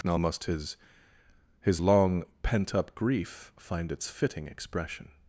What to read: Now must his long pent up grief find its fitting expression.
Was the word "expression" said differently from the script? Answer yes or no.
no